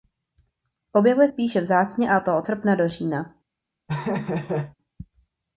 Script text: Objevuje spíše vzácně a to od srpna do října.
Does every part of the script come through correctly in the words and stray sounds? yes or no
no